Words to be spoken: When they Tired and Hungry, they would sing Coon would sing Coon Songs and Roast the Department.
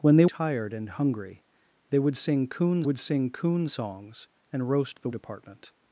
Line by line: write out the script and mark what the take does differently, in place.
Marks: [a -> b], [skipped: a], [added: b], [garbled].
When they Tired and Hungry, they would sing Coon would sing Coon Songs and Roast the Department.